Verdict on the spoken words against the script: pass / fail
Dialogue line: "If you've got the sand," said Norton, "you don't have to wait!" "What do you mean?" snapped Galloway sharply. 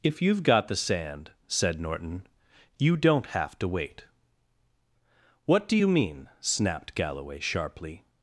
pass